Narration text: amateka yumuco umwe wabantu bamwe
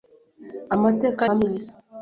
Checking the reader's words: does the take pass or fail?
fail